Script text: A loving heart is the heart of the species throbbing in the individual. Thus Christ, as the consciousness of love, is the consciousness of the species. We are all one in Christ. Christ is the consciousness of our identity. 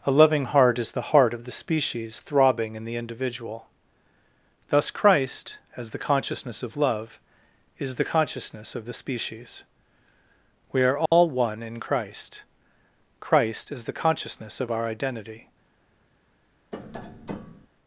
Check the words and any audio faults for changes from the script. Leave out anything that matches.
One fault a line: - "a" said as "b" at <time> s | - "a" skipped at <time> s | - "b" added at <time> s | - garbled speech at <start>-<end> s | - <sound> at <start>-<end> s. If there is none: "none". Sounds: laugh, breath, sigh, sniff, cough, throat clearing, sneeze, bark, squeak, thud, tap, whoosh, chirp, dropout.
- dropout at 11.1-11.1 s
- tap at 16.7-17.7 s